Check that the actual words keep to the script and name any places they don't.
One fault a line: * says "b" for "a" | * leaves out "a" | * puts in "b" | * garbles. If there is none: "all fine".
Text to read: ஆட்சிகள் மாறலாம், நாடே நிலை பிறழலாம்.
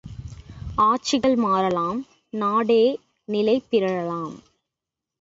all fine